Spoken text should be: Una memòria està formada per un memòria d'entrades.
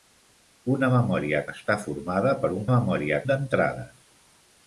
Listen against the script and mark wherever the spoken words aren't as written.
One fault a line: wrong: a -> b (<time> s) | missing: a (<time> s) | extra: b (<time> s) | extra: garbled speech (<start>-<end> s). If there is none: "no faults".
no faults